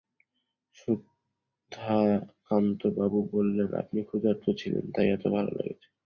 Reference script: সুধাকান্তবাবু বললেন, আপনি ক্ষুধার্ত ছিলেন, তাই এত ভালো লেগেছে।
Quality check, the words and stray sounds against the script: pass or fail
pass